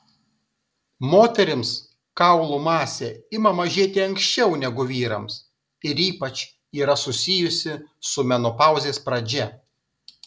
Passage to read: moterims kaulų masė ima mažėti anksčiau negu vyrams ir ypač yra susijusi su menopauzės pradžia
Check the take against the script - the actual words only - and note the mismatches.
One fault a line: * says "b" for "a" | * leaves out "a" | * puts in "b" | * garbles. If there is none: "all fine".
all fine